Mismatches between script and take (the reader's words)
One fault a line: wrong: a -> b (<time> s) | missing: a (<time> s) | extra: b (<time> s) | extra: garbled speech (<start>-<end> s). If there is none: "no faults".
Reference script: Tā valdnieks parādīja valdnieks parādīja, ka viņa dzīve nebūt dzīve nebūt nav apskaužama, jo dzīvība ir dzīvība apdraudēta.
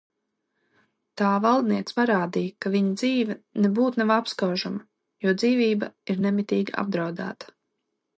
missing: valdnieks parādīja (2.5 s)
missing: dzīve nebūt (4.0 s)
wrong: dzīvība -> nemitīgi (6.2 s)